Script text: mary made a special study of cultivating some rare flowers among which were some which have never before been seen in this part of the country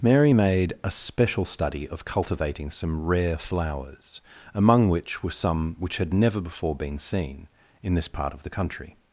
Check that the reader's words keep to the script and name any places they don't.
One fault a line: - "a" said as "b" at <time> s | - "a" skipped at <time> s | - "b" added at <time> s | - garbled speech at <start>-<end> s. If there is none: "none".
- "have" said as "had" at 6.0 s